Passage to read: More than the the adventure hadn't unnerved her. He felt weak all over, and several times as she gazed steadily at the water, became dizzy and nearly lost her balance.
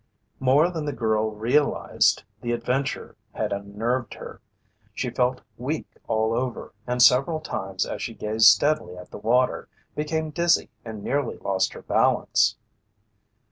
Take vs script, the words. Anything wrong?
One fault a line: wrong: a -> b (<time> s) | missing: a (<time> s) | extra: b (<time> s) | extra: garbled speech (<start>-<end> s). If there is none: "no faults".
extra: girl realized (0.9 s)
wrong: hadn't -> had (3.3 s)
wrong: He -> She (4.9 s)